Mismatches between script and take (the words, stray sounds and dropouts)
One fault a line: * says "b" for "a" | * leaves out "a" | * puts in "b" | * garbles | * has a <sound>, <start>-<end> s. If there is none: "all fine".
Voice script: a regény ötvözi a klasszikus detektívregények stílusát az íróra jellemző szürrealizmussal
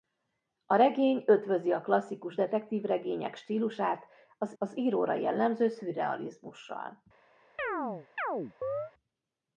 * puts in "az"
* has a chirp, 7.6-8.9 s